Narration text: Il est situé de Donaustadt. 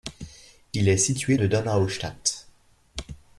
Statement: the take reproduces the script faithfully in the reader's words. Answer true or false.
true